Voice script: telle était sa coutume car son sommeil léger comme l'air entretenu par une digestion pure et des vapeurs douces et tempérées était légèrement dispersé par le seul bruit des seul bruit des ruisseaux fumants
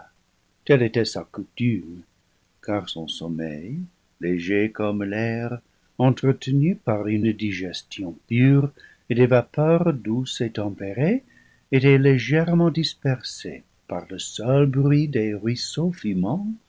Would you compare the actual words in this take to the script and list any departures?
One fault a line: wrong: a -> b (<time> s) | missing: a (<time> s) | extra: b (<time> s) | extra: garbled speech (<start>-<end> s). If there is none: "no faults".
missing: seul bruit des (15.3 s)